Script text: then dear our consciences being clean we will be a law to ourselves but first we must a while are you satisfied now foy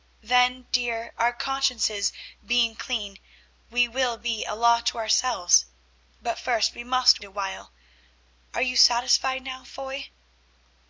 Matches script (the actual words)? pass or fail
pass